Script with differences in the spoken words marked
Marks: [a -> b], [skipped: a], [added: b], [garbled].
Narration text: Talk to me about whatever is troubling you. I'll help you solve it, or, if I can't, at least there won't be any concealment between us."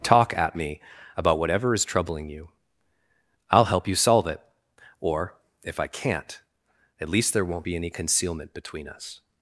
Talk [to -> at] me about whatever is troubling you. I'll help you solve it, or, if I can't, at least there won't be any concealment between us."